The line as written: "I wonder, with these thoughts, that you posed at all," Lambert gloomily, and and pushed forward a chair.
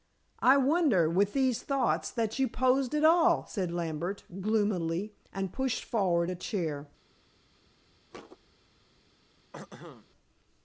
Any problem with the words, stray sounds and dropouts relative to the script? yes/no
yes